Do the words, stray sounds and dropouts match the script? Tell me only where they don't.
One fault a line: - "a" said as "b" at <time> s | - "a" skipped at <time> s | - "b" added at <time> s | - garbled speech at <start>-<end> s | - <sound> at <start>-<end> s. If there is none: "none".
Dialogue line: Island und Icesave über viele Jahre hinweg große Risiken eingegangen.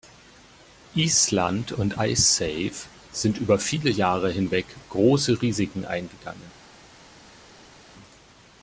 - "sind" added at 3.1 s